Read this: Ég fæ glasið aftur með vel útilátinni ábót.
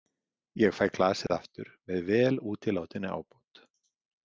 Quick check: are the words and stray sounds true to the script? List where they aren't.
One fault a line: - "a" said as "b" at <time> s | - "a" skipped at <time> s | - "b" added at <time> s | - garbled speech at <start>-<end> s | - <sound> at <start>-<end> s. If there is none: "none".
- dropout at 1.3-1.3 s